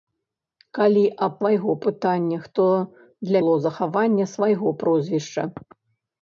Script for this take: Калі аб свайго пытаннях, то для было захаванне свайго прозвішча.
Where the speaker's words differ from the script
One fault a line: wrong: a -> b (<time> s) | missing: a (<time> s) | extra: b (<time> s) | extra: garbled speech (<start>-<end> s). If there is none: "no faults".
no faults